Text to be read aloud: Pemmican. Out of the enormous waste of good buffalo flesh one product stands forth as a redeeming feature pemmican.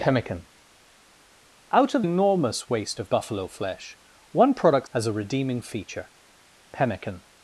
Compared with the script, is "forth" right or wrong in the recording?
wrong